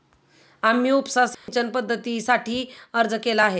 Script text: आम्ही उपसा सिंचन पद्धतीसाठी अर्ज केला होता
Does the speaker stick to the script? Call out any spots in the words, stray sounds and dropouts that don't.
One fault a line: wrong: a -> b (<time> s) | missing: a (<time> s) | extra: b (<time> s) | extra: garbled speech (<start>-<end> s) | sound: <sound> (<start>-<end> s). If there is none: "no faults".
sound: dropout (1.3-1.5 s)
wrong: होता -> आहे (3.4 s)